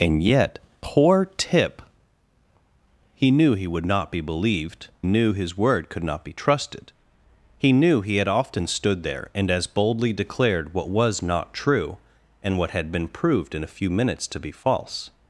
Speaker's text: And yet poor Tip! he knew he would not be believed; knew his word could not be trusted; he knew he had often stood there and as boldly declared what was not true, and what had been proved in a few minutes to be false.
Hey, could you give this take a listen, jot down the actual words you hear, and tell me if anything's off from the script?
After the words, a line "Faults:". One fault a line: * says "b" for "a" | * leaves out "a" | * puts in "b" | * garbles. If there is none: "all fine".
And yet poor Tip! he knew he would not be believed; knew his word could not be trusted; he knew he had often stood there and as boldly declared what was not true, and what had been proved in a few minutes to be false.
Faults:
all fine